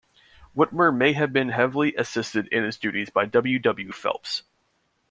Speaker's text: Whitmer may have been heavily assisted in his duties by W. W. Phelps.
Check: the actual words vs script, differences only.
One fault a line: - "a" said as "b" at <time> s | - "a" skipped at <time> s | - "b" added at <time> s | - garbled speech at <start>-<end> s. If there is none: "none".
none